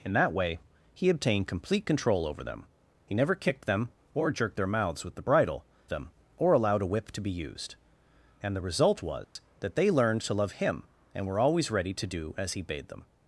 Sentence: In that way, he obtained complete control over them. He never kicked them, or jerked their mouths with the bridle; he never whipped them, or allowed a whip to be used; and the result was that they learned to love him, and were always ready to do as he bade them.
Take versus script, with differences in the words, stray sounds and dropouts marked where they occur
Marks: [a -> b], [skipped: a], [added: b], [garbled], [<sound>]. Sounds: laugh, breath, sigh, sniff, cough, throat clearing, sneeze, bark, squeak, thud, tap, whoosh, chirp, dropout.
In that way, he obtained complete control over them. He never kicked them, or jerked their mouths with the bridle; [skipped: he never whipped] them, or allowed a whip to be used; and the result was [dropout] that they learned to love him, and were always ready to do as he bade them.